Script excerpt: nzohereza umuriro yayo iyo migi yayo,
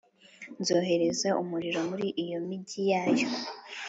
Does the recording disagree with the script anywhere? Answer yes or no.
yes